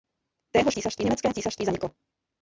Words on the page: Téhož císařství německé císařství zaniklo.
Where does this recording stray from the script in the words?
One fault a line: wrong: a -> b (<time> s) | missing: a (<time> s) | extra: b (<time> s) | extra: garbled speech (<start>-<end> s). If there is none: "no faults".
no faults